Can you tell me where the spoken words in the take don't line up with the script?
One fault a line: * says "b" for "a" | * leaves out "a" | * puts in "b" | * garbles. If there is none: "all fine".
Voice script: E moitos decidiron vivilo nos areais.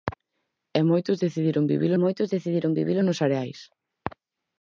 * puts in "moitos decidiron vivilo"